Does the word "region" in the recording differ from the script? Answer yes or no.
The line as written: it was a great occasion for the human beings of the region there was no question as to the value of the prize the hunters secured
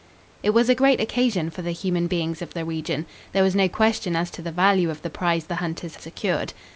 no